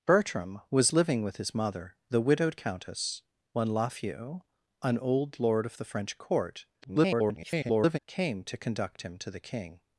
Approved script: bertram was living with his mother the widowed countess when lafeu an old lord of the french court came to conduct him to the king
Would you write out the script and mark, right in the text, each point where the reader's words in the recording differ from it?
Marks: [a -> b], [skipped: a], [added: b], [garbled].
bertram was living with his mother the widowed countess when lafeu an old lord of the french court [garbled] came to conduct him to the king